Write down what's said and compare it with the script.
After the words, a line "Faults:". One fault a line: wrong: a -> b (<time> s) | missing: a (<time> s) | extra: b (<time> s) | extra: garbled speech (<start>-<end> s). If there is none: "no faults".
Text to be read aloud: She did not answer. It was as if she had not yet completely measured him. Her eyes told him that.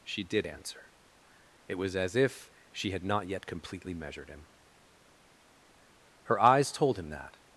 She did answer. It was as if she had not yet completely measured him. Her eyes told him that.
Faults:
missing: not (0.5 s)